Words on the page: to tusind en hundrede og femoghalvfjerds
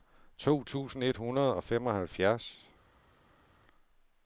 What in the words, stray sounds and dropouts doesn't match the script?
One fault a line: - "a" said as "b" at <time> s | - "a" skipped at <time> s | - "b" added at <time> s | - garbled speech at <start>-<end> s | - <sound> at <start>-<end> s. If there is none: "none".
- "en" said as "et" at 1.0 s